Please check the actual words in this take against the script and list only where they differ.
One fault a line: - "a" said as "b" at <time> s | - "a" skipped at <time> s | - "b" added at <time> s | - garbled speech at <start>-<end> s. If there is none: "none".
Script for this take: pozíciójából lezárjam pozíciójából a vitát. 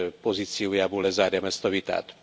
- "pozíciójából" said as "ezt" at 1.4 s